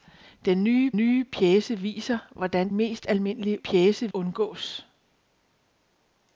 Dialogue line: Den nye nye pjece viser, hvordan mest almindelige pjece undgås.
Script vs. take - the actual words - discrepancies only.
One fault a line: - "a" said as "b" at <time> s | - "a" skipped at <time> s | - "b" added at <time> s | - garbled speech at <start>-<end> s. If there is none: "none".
none